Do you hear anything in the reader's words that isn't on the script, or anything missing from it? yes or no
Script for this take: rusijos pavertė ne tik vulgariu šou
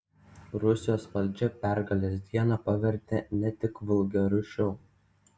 yes